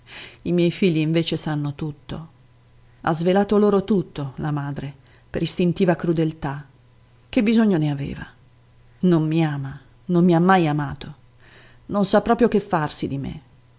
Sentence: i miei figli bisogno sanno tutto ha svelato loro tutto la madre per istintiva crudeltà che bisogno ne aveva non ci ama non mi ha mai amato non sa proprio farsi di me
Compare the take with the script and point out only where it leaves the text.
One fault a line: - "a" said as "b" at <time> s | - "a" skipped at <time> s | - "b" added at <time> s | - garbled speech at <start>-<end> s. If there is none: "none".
- "bisogno" said as "invece" at 1.0 s
- "ci" said as "mi" at 9.3 s
- "che" added at 12.5 s